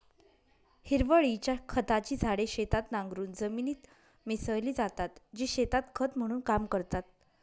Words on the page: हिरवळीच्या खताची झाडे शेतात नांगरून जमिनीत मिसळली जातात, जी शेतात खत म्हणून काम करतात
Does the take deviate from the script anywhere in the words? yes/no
no